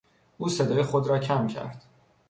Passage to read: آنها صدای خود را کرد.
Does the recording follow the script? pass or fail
fail